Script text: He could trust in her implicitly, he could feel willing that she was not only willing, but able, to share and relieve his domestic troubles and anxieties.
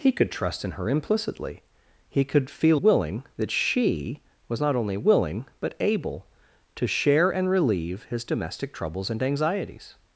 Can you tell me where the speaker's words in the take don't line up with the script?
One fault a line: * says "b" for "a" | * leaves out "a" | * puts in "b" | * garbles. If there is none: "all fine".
all fine